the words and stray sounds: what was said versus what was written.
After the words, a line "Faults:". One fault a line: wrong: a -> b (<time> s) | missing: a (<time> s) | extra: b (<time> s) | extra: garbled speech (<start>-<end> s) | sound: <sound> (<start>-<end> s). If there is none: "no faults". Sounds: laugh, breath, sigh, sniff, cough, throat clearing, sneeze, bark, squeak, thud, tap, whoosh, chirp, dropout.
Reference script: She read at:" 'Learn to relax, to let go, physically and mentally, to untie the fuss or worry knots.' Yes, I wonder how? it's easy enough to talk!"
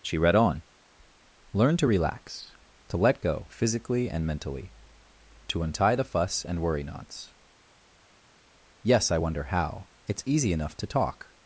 She read on:" 'Learn to relax, to let go, physically and mentally, to untie the fuss and worry knots.' Yes, I wonder how? it's easy enough to talk!"
Faults:
wrong: at -> on (0.3 s)
wrong: or -> and (6.4 s)